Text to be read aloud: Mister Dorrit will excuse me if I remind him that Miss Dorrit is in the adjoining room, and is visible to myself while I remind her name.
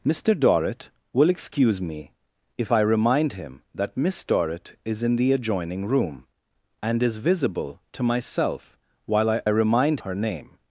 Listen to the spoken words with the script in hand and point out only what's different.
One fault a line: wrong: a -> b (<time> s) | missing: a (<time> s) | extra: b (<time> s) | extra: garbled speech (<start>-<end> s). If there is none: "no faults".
no faults